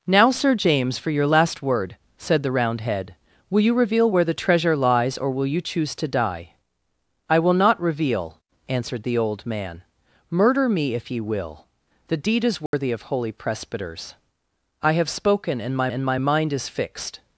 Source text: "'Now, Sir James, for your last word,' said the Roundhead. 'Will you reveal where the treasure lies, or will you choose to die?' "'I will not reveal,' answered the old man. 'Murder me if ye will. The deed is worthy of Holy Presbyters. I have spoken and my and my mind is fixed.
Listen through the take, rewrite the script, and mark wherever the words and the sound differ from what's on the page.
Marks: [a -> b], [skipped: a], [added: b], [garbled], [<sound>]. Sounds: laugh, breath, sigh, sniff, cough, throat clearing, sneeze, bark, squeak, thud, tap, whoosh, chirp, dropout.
"'Now, Sir James, for your last word,' said the Roundhead. 'Will you reveal where the treasure lies, or will you choose to die?' "'I will not reveal,' answered the old man. 'Murder me if ye will. The deed is worthy [dropout] of Holy Presbyters. I have spoken and my and my mind is fixed.